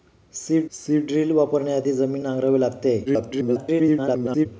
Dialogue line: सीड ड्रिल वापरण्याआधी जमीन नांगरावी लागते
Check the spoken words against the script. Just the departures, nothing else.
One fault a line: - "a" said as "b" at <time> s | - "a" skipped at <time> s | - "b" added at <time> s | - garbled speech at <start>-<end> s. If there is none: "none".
- "सीड" added at 0.7 s
- garbled speech at 3.1-4.5 s